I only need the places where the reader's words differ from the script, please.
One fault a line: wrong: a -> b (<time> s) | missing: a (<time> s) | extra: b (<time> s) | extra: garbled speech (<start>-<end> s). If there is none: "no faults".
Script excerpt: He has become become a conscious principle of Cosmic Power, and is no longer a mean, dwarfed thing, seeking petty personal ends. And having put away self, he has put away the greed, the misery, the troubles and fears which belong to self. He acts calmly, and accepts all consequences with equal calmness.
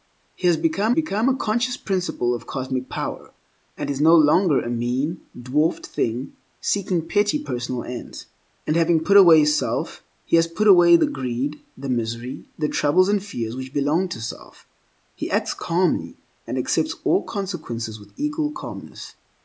no faults